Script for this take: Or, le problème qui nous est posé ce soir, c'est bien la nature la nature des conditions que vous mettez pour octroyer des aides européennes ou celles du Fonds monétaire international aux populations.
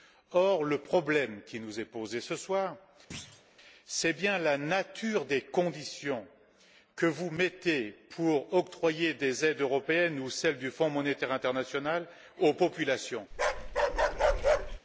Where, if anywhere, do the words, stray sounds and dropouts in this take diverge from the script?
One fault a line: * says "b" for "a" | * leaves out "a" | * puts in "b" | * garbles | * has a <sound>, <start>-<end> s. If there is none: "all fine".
* has a thud, 3.1-3.4 s
* leaves out "la nature"
* has a bark, 13.3-14.8 s